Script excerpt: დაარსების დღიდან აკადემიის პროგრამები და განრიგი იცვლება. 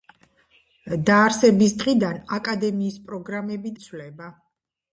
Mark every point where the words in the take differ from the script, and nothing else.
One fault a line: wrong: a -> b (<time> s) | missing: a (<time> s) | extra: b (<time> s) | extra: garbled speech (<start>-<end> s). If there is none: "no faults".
missing: და განრიგი (3.8 s)